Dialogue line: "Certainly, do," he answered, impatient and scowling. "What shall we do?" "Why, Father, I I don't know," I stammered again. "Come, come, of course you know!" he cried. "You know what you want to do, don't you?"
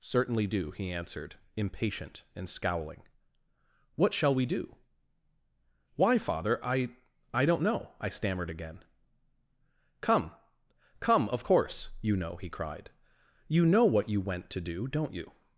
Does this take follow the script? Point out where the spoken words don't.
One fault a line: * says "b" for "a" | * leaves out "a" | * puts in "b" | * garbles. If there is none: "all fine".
* says "went" for "want"